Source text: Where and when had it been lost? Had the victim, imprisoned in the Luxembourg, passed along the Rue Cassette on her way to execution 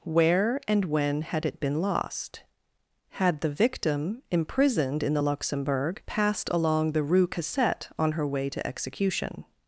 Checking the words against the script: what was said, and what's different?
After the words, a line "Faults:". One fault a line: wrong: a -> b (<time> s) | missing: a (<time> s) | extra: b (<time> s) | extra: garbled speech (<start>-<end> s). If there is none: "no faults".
Where and when had it been lost? Had the victim, imprisoned in the Luxembourg, passed along the Rue Cassette on her way to execution
Faults:
no faults